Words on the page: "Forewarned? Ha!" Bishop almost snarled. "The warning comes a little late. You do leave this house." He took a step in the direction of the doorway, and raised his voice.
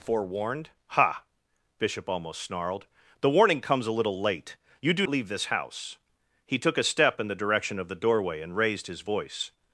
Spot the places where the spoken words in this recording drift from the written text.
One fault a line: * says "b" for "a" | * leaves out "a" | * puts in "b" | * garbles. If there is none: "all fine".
all fine